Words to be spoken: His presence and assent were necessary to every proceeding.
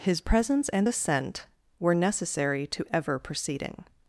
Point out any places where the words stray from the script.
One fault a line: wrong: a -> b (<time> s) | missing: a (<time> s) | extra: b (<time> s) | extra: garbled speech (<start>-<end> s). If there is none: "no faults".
wrong: every -> ever (2.9 s)